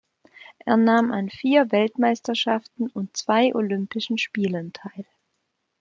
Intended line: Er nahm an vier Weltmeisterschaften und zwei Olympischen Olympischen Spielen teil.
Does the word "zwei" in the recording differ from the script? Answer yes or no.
no